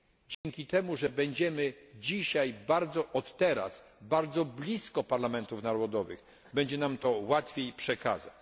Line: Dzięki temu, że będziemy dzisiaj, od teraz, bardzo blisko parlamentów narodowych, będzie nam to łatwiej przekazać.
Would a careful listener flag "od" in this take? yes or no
no